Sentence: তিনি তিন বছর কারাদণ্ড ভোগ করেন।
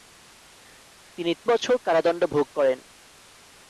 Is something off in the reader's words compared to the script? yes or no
yes